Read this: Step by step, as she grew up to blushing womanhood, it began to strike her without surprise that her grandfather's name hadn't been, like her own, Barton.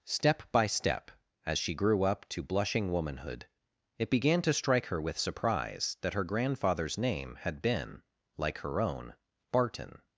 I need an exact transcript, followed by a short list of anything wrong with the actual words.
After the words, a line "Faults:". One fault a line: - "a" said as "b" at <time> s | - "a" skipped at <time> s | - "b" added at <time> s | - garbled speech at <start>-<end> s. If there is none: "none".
Step by step, as she grew up to blushing womanhood, it began to strike her with surprise that her grandfather's name had been, like her own, Barton.
Faults:
- "without" said as "with" at 5.0 s
- "hadn't" said as "had" at 7.4 s